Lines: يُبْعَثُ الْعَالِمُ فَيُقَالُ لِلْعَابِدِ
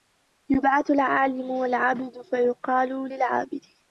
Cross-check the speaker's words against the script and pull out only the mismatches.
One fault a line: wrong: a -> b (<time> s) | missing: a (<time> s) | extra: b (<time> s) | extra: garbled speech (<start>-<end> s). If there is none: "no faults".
extra: وَالْعَابِدُ (1.5 s)